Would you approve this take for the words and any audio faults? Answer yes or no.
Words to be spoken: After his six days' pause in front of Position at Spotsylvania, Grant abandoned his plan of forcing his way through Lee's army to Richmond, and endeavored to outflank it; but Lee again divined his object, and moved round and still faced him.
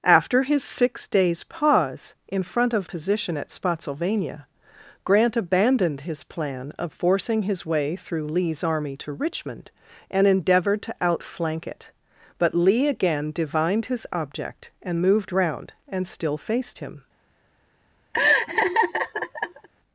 no